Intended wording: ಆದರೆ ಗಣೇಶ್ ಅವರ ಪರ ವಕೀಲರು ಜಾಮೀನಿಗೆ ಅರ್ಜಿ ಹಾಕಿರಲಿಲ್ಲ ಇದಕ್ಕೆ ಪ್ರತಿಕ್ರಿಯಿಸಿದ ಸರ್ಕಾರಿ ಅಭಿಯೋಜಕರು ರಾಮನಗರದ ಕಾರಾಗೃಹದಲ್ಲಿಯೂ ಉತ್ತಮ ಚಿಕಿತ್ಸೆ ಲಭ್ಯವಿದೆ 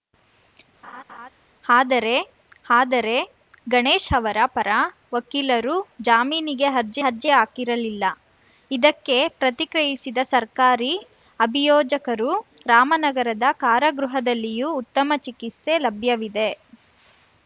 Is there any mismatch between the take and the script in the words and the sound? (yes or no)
yes